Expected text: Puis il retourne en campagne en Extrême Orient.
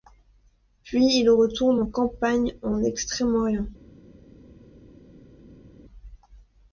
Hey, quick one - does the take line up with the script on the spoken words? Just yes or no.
yes